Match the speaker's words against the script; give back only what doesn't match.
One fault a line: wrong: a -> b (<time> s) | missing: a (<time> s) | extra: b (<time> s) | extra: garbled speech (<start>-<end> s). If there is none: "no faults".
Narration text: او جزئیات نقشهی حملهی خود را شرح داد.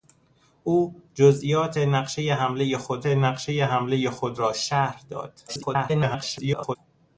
extra: نقشهی حملهی خود (3.1 s)
extra: garbled speech (5.5-6.8 s)